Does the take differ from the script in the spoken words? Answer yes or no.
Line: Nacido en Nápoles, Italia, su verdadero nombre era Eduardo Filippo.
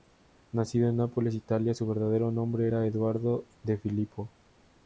yes